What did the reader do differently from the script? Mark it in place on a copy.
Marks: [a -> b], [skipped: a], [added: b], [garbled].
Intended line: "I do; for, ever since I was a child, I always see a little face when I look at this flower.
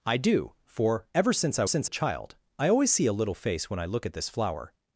"I do; for, ever since I [was -> since] a child, I always see a little face when I look at this flower.